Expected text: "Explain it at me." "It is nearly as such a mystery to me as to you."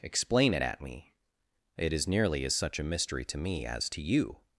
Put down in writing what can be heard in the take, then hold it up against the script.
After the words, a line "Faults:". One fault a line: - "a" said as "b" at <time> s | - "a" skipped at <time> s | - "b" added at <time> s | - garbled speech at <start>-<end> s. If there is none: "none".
"Explain it at me." "It is nearly as such a mystery to me as to you."
Faults:
none